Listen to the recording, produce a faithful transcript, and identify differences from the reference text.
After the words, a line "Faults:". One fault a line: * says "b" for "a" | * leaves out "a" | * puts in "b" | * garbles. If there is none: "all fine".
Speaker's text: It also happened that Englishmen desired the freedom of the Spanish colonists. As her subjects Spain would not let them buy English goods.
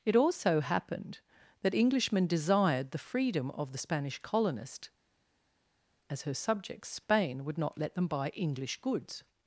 It also happened that Englishmen desired the freedom of the Spanish colonist. As her subjects Spain would not let them buy English goods.
Faults:
* says "colonist" for "colonists"